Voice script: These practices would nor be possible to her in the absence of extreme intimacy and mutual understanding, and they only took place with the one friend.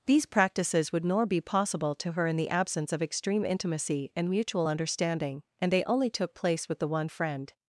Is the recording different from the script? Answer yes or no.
no